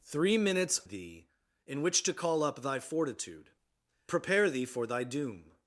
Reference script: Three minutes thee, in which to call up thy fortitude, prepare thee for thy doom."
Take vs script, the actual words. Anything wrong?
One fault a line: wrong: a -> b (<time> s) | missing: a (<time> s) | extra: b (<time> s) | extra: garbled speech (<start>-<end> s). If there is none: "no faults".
no faults